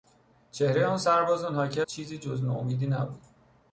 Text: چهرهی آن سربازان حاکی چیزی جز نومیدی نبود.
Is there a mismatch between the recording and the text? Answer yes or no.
no